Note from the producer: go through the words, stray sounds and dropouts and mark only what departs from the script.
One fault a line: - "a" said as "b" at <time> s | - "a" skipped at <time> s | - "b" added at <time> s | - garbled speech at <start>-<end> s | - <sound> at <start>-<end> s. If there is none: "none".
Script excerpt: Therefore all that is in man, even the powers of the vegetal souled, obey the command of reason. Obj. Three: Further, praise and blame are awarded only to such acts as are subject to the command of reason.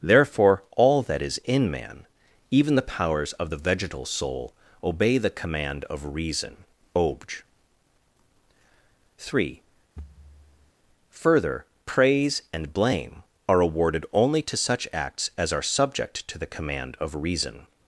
- "souled" said as "soul" at 4.1 s
- thud at 10.0-10.7 s